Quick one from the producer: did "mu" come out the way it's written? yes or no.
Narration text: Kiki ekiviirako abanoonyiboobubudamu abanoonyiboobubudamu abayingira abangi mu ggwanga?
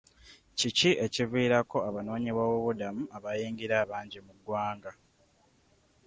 yes